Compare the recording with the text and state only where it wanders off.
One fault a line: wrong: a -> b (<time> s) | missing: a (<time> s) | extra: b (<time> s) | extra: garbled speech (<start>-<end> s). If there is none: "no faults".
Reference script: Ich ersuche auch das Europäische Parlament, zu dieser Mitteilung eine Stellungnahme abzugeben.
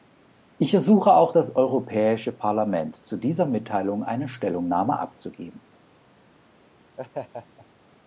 no faults